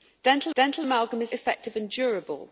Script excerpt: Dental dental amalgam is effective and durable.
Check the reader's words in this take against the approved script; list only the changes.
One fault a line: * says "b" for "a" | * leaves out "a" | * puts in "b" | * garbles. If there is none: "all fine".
all fine